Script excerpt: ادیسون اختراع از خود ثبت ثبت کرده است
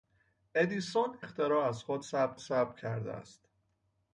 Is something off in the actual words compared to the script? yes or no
no